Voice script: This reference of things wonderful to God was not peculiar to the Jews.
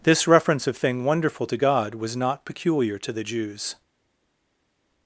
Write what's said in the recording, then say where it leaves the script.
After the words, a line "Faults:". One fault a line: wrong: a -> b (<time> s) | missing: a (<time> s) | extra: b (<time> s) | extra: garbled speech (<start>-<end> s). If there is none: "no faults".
This reference of thing wonderful to God was not peculiar to the Jews.
Faults:
wrong: things -> thing (0.8 s)